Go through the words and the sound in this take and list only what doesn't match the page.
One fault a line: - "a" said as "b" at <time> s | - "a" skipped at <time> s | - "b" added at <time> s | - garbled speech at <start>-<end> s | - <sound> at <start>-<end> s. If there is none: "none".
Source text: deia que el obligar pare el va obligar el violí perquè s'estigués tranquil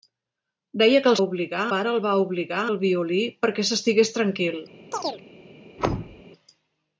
- chirp at 4.9-5.2 s
- thud at 5.8-6.2 s